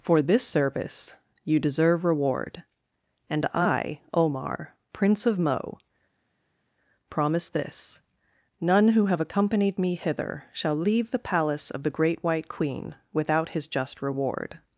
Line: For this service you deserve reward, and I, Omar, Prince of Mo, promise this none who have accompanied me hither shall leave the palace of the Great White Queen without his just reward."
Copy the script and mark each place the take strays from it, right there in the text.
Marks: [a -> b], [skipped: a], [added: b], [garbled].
For this service you deserve reward, and I, Omar, Prince of Mo, promise this none who have accompanied me hither shall leave the palace of the Great White Queen without his just reward."